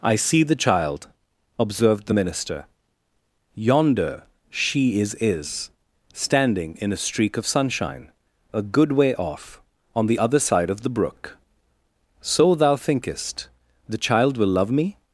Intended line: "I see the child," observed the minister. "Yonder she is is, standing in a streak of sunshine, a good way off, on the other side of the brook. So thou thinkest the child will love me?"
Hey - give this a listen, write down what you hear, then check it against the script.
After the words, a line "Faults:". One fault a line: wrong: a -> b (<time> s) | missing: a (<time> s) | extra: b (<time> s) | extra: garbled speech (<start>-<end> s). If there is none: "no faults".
"I see the child," observed the minister. "Yonder she is is, standing in a streak of sunshine, a good way off, on the other side of the brook. So thou thinkest the child will love me?"
Faults:
no faults